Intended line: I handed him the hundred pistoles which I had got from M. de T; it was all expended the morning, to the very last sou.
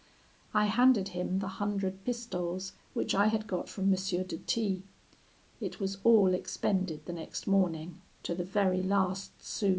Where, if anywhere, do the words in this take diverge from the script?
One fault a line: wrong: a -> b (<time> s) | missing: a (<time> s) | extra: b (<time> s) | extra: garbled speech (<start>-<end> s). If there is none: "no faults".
extra: next (7.1 s)